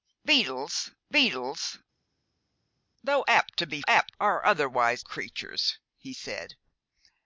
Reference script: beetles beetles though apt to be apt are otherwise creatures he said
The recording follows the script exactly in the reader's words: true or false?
true